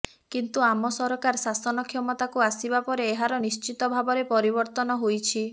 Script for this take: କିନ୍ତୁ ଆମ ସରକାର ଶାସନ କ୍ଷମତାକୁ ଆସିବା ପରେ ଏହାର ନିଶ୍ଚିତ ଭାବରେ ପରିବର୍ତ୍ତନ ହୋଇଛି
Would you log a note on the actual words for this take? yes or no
no